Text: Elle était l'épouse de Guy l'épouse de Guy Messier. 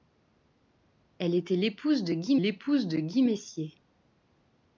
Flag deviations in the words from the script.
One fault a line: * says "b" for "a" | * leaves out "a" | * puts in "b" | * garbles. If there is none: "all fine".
all fine